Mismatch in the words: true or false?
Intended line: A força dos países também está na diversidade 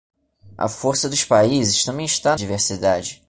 true